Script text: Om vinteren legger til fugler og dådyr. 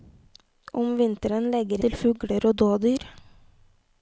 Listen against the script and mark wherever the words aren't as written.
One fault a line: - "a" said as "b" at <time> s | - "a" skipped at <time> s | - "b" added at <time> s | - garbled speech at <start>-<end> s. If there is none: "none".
none